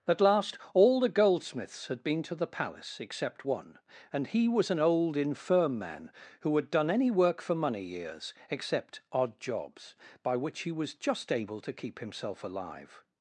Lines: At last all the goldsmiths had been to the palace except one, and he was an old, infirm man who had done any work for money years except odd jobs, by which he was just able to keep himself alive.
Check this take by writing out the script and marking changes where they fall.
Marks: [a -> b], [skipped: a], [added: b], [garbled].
At last all the goldsmiths had been to the palace except one, and he was an old, infirm man who had done any work for money years except odd jobs, by which he was just able to keep himself alive.